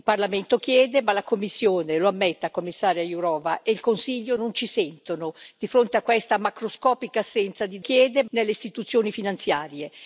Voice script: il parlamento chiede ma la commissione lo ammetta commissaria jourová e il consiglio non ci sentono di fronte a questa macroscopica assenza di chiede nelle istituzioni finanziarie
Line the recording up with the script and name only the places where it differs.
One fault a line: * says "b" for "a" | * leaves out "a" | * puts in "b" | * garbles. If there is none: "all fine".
all fine